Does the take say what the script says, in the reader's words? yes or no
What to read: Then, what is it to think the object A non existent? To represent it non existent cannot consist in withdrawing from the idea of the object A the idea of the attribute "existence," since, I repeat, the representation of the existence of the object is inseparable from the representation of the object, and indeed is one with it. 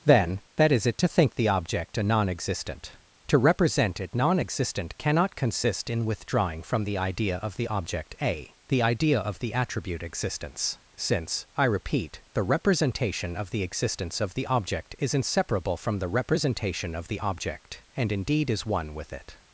no